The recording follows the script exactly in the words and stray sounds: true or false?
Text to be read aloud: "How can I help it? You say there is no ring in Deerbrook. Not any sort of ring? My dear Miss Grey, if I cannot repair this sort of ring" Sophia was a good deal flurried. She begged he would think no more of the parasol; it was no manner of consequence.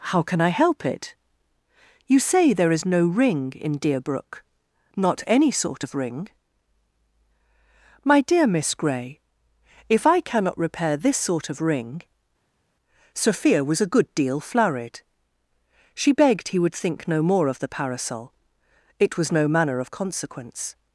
true